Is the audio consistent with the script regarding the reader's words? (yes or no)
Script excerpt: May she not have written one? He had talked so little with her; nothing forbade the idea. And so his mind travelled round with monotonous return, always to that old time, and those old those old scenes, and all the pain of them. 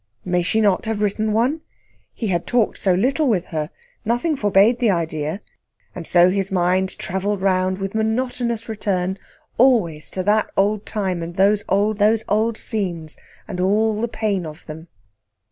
yes